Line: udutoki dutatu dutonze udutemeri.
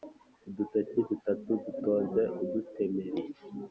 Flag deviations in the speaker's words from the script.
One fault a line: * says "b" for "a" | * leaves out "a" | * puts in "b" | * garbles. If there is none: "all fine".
all fine